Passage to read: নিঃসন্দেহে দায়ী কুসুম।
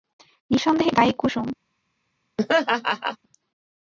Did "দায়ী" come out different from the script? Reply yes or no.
no